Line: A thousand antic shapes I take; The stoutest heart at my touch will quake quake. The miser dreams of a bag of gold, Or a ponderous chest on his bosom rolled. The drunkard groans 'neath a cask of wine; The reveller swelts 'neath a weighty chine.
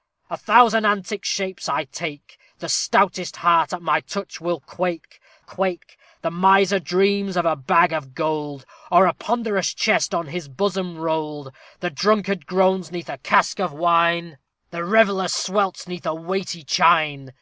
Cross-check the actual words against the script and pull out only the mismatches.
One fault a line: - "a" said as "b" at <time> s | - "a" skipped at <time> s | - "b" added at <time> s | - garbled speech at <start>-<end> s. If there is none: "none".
none